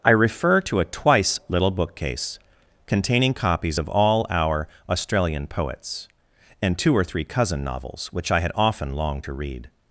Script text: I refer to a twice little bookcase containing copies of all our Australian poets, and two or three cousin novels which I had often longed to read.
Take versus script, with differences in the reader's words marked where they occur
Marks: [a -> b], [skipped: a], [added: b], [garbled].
I refer to a twice little bookcase containing copies of all our Australian poets, and two or three cousin novels which I had often longed to read.